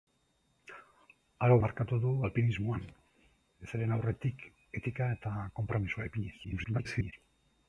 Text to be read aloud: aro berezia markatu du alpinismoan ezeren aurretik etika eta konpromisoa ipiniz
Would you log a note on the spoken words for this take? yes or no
yes